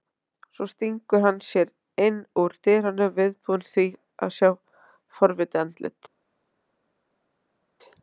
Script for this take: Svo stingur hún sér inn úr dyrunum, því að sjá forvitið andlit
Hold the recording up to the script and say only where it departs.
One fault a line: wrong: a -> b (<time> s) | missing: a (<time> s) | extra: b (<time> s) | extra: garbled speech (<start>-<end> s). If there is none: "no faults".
wrong: hún -> hann (1.2 s)
extra: viðbúinn (3.2 s)